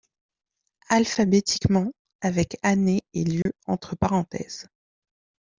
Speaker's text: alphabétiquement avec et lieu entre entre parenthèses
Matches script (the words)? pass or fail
fail